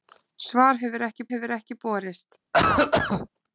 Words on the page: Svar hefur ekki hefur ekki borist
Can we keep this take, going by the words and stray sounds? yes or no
no